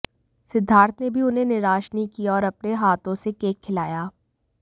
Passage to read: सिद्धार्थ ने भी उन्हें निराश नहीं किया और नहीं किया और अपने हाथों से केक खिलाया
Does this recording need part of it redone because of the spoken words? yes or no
yes